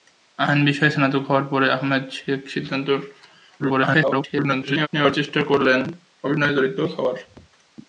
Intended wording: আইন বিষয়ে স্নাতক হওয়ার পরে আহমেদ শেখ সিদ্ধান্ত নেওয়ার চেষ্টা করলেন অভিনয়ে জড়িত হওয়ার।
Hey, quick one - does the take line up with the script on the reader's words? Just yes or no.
no